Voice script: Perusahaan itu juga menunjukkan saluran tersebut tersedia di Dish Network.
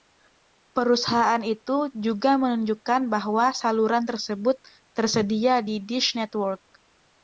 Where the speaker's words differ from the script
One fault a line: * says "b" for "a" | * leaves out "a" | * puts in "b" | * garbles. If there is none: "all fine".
* puts in "bahwa"